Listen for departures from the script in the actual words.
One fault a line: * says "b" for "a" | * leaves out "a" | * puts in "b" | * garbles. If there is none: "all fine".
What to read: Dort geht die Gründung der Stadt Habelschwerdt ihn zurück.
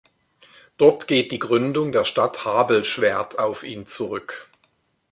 * puts in "auf"